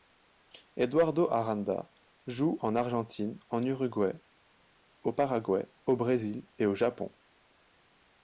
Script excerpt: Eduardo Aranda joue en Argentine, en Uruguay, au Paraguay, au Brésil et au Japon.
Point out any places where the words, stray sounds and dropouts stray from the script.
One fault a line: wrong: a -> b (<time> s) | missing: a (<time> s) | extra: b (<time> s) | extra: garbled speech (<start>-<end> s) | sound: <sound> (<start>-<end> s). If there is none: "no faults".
no faults